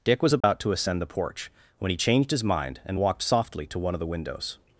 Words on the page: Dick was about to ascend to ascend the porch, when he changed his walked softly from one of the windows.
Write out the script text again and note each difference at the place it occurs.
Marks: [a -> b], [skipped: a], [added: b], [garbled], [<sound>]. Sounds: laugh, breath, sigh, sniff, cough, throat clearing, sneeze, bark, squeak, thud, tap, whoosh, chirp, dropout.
Dick was about [dropout] to ascend [skipped: to ascend] the porch, when he changed his [added: mind and] walked softly [from -> to] one of the windows.